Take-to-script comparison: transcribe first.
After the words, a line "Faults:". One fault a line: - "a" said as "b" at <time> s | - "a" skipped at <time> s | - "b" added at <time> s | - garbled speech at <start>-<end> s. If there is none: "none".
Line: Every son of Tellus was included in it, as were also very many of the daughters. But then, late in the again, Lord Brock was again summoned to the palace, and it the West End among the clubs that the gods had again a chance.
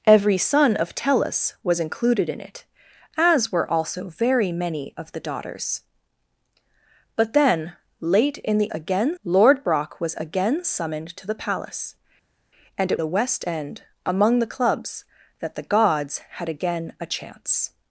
Every son of Tellus was included in it, as were also very many of the daughters. But then, late in the again, Lord Brock was again summoned to the palace, and it the West End among the clubs that the gods had again a chance.
Faults:
none